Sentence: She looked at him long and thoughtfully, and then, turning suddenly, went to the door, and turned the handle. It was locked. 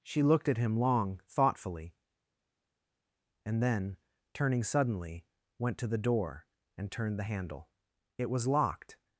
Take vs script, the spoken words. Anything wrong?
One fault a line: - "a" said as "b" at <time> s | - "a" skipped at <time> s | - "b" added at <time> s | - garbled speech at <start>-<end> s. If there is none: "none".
- "and" skipped at 1.2 s